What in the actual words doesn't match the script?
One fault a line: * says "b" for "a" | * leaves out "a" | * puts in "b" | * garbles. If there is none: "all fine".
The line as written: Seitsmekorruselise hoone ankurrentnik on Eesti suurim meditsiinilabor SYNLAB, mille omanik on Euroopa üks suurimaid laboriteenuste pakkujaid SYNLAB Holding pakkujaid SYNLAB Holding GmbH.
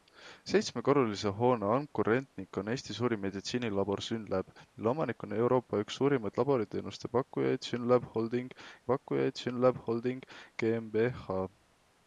all fine